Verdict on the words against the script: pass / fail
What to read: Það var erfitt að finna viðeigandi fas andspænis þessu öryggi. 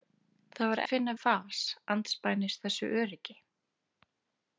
fail